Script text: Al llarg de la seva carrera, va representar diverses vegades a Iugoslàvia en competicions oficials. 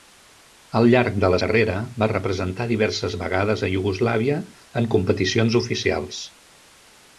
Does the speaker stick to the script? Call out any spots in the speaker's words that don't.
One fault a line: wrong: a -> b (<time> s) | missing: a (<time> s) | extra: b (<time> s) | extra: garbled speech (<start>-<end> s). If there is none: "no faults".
missing: seva (1.4 s)